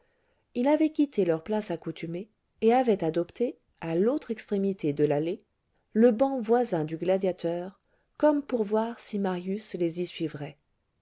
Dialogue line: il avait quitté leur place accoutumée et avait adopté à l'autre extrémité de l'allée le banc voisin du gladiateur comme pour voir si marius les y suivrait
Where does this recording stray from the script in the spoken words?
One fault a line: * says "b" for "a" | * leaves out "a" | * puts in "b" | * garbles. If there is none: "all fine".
all fine